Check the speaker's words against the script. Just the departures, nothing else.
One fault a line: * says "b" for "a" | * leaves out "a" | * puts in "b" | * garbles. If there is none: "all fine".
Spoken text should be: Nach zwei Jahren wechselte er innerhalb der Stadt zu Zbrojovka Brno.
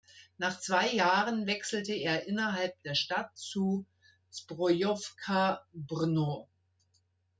all fine